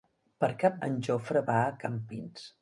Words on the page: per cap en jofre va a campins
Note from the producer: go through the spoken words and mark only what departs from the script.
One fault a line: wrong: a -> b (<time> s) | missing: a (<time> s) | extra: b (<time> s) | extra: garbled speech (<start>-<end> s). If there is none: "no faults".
no faults